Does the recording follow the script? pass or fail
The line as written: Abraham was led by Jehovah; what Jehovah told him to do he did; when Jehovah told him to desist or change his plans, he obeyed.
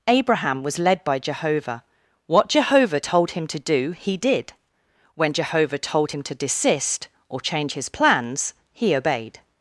pass